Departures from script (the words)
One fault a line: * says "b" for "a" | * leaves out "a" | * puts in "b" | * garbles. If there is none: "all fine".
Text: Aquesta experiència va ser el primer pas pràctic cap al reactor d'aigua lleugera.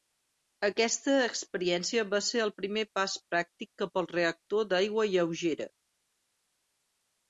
all fine